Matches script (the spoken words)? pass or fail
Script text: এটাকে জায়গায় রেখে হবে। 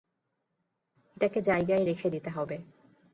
fail